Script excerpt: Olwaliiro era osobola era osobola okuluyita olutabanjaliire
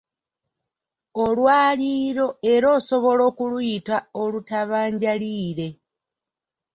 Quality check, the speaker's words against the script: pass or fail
fail